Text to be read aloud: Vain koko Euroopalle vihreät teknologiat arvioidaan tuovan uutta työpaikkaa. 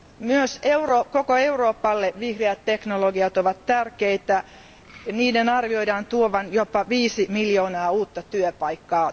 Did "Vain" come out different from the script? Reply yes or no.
yes